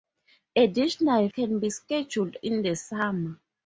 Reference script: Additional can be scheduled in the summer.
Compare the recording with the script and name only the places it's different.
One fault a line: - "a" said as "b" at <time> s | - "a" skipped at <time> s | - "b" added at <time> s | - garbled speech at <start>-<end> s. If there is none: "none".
none